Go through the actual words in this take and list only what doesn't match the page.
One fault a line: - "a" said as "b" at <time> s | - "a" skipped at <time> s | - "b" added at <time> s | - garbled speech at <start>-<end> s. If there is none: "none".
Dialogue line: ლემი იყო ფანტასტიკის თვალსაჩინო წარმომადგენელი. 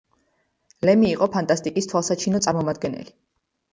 none